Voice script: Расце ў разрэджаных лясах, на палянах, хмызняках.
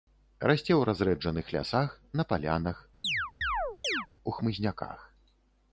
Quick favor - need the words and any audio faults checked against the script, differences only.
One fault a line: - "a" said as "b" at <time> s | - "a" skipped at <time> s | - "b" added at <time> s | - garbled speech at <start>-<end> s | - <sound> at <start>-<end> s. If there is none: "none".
- chirp at 3.0-4.1 s
- "у" added at 4.3 s